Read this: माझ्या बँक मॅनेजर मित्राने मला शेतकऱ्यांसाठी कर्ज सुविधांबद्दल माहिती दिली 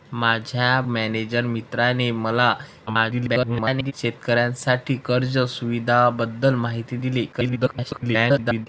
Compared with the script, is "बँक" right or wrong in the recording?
wrong